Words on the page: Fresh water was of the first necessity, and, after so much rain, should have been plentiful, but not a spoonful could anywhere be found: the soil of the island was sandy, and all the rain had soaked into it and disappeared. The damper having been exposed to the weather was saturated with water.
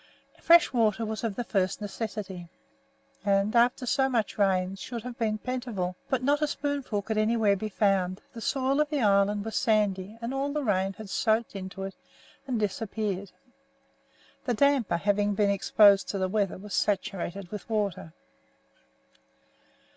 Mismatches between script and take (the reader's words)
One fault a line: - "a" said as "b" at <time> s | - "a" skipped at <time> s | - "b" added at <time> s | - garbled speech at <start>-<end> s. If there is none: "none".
none